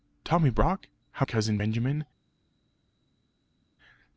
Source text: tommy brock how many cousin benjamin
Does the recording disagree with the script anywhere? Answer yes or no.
yes